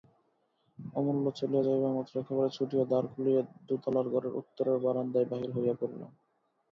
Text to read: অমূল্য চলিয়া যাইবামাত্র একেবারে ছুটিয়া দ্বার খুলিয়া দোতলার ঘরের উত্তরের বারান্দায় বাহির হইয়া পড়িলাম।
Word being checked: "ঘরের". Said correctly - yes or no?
yes